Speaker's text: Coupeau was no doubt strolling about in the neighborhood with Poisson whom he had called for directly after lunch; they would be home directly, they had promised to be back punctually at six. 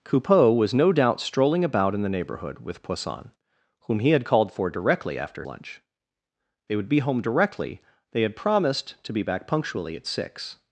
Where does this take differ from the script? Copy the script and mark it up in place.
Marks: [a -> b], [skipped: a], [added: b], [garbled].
Coupeau was no doubt strolling about in the neighborhood with Poisson whom he had called for directly after lunch; they would be home directly, they had promised to be back punctually at six.